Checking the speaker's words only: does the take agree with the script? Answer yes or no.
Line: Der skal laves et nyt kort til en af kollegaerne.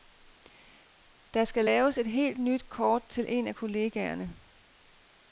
no